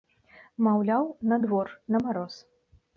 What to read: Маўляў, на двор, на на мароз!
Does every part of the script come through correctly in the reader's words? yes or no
no